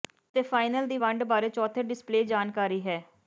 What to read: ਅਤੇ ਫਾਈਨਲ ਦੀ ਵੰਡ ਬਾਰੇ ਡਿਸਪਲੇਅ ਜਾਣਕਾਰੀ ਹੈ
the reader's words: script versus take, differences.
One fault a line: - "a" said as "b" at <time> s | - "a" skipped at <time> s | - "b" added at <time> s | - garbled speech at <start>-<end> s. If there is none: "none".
- "ਚੌਥੇ" added at 1.5 s